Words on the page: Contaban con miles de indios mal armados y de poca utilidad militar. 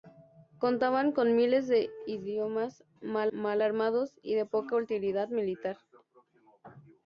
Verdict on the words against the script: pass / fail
fail